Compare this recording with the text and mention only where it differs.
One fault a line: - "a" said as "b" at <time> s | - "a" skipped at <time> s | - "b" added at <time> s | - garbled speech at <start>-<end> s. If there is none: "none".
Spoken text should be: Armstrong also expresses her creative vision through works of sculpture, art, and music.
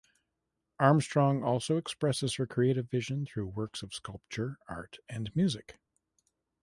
none